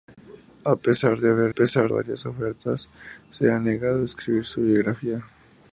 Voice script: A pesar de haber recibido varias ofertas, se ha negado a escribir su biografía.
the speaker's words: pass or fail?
fail